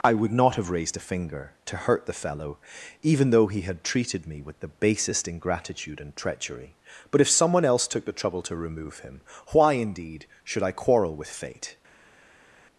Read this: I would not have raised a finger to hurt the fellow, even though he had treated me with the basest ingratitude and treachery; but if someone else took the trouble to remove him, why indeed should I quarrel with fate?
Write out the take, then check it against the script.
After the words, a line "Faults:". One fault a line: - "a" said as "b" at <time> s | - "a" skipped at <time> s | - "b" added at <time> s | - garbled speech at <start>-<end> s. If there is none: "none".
I would not have raised a finger to hurt the fellow, even though he had treated me with the basest ingratitude and treachery; but if someone else took the trouble to remove him, why indeed should I quarrel with fate?
Faults:
none